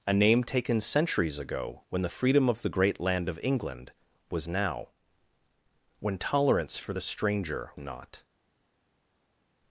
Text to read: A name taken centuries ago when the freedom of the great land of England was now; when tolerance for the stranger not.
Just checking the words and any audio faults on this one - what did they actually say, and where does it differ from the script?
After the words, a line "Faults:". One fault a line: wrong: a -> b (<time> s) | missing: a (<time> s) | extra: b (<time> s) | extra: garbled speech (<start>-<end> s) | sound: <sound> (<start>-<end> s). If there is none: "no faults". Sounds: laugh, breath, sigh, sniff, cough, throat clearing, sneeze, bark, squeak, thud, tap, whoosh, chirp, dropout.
A name taken centuries ago when the freedom of the great land of England was now; when tolerance for the stranger not.
Faults:
no faults